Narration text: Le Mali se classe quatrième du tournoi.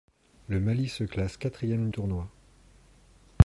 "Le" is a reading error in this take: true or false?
false